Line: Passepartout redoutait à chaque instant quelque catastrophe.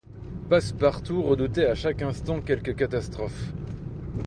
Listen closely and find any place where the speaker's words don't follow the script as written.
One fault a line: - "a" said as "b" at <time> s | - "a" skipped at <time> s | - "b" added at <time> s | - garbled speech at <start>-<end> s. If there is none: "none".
none